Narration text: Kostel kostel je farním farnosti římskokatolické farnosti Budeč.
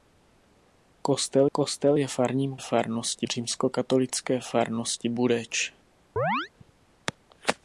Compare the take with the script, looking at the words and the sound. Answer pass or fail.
fail